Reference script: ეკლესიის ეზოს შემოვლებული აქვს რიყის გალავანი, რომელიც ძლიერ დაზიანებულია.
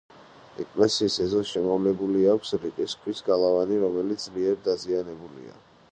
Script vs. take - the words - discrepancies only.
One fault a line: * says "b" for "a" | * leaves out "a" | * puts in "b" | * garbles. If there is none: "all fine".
* puts in "ქვის"